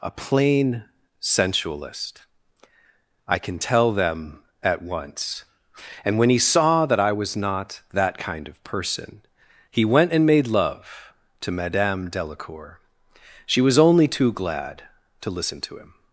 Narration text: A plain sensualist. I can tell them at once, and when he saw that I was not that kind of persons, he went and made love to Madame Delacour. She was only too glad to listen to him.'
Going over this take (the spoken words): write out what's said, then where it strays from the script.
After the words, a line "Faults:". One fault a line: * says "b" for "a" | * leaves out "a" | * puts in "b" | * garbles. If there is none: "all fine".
A plain sensualist. I can tell them at once, and when he saw that I was not that kind of person, he went and made love to Madame Delacour. She was only too glad to listen to him.'
Faults:
* says "person" for "persons"